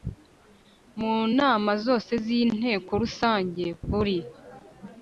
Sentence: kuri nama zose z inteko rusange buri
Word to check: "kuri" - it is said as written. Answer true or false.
false